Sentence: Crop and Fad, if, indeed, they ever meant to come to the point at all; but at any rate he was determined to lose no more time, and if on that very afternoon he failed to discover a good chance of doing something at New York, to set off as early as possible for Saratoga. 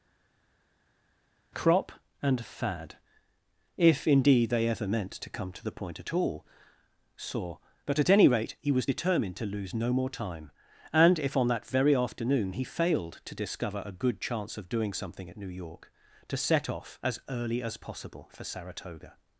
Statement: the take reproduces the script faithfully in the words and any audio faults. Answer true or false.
false